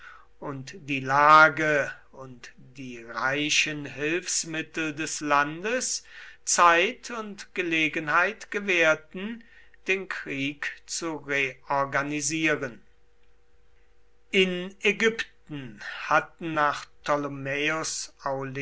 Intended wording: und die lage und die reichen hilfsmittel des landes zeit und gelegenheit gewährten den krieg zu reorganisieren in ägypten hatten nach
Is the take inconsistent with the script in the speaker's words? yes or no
no